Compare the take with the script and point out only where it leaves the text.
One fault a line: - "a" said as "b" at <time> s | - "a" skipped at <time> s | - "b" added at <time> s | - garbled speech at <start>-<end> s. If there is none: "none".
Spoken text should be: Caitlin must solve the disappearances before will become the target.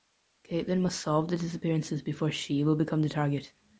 - "she" added at 2.3 s